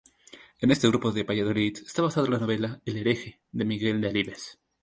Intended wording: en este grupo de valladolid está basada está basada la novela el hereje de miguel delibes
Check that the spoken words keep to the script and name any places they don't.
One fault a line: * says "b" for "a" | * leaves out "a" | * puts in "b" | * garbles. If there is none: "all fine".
* leaves out "está basada"